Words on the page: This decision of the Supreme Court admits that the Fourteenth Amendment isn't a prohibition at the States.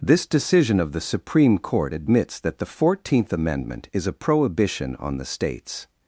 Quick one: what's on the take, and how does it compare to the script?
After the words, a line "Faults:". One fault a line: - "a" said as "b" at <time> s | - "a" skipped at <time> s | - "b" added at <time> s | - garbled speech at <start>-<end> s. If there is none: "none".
This decision of the Supreme Court admits that the Fourteenth Amendment is a prohibition on the States.
Faults:
- "isn't" said as "is" at 3.9 s
- "at" said as "on" at 5.0 s